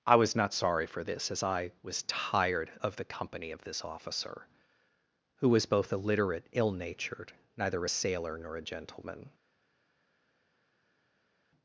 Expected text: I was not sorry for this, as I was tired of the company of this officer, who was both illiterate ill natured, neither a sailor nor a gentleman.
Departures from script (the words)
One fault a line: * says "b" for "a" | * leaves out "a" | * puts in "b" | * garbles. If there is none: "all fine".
all fine